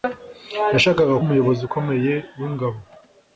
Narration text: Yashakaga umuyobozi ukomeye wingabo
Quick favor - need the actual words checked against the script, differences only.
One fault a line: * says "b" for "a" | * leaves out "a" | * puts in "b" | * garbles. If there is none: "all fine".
all fine